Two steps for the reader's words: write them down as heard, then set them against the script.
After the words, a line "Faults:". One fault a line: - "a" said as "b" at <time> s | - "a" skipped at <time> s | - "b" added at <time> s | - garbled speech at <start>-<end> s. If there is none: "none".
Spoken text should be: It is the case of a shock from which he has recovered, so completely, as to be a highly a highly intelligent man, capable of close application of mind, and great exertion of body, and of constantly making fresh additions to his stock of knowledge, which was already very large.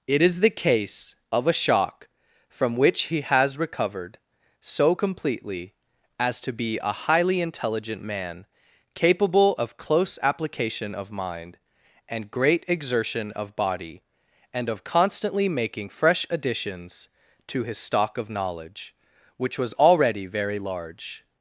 It is the case of a shock from which he has recovered, so completely, as to be a highly intelligent man, capable of close application of mind, and great exertion of body, and of constantly making fresh additions to his stock of knowledge, which was already very large.
Faults:
- "a highly" skipped at 7.4 s